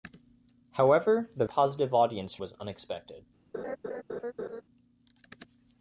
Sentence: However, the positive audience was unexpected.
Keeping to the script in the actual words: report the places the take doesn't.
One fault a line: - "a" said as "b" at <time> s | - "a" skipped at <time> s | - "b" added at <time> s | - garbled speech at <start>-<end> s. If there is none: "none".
none